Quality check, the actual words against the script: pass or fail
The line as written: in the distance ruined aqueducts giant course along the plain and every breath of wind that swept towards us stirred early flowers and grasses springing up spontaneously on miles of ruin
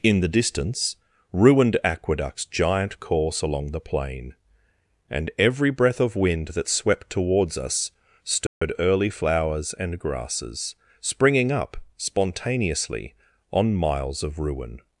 pass